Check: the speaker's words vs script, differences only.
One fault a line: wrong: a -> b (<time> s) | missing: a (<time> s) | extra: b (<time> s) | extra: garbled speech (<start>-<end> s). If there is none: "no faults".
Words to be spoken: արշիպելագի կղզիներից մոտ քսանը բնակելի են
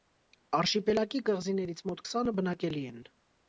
no faults